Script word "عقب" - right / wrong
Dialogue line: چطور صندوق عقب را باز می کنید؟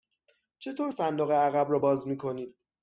right